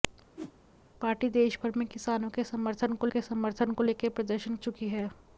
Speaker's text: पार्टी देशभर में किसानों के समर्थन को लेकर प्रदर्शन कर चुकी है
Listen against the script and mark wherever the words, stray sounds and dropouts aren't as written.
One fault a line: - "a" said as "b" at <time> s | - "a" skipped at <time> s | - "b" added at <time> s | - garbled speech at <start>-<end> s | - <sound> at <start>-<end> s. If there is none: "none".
- whoosh at 0.4-0.6 s
- "के समर्थन को" added at 3.1 s
- "कर" skipped at 4.5 s